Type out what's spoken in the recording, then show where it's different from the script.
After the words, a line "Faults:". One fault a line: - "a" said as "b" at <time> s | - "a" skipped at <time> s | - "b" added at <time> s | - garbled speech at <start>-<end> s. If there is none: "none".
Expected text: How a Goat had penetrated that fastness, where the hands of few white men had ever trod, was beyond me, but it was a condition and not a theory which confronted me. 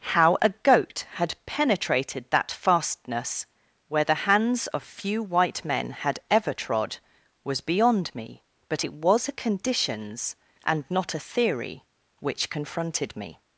How a Goat had penetrated that fastness, where the hands of few white men had ever trod, was beyond me, but it was a conditions and not a theory which confronted me.
Faults:
- "condition" said as "conditions" at 9.3 s